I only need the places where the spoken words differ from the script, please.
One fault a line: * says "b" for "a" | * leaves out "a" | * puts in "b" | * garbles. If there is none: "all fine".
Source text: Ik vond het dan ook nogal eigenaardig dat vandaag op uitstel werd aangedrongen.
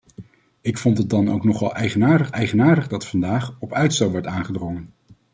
* puts in "eigenaardig"